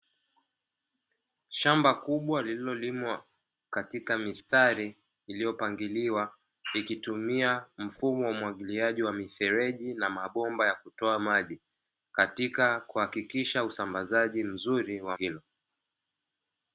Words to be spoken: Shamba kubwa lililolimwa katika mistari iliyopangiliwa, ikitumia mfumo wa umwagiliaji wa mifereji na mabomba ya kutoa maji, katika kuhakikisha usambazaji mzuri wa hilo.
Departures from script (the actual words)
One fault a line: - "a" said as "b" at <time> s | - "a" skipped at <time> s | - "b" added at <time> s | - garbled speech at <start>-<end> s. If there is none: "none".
none